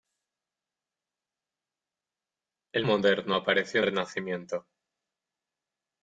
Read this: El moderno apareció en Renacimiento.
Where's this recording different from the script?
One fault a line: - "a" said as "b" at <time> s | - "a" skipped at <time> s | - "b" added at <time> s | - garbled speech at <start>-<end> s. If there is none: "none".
none